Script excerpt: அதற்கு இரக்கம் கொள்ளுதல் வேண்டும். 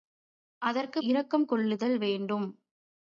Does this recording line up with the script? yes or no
yes